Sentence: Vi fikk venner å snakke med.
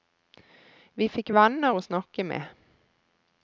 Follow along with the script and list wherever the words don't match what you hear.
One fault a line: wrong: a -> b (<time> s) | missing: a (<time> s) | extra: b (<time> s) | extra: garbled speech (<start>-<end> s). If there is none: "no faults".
no faults